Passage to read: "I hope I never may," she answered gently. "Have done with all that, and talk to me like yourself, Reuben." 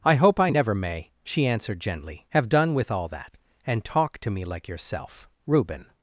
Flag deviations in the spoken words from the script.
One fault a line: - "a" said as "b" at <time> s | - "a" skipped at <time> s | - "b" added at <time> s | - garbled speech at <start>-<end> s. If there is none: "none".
none